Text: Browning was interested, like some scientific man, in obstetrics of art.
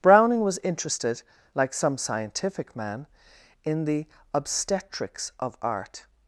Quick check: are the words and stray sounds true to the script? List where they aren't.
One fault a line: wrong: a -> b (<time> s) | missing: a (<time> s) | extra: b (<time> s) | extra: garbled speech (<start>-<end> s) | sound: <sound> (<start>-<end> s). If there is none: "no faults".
extra: the (3.8 s)